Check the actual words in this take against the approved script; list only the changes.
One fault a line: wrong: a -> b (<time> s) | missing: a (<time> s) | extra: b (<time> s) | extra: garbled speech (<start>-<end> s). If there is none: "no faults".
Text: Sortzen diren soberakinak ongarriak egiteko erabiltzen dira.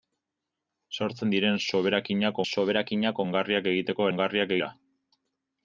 extra: soberakinak (2.5 s)
wrong: erabiltzen -> ongarriak (4.1 s)